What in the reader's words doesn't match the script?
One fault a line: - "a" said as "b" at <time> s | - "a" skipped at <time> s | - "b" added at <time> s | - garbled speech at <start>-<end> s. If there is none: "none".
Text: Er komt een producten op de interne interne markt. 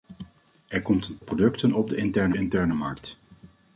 none